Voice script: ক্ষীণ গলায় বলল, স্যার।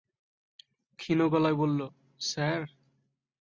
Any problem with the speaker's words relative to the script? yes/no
no